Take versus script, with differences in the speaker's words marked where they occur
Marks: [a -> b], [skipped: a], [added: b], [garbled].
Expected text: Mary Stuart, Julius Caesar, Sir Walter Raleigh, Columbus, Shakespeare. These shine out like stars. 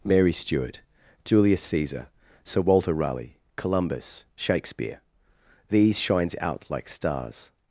Mary Stuart, Julius Caesar, Sir Walter Raleigh, Columbus, Shakespeare. These [shine -> shines] out like stars.